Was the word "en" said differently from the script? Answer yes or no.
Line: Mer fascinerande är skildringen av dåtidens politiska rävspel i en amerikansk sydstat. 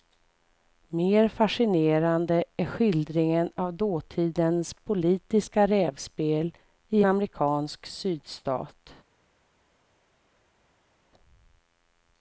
yes